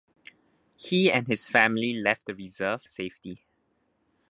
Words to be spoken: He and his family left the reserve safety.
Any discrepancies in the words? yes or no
no